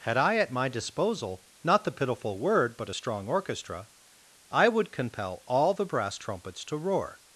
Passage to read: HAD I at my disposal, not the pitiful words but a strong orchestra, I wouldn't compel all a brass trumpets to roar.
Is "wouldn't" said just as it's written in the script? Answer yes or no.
no